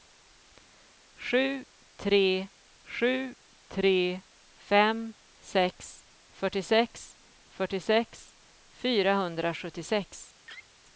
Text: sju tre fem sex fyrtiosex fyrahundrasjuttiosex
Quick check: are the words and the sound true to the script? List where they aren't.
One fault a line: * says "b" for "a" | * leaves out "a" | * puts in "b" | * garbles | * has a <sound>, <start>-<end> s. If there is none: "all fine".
* puts in "sju tre"
* puts in "fyrtiosex"
* has a laugh, 10.5-10.7 s